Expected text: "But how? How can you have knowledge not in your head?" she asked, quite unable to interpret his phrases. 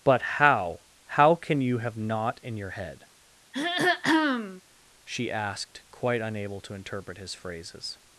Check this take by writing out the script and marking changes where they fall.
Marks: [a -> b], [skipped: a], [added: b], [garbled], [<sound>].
"But how? How can you have [skipped: knowledge] not in your head?" [throat clearing] she asked, quite unable to interpret his phrases.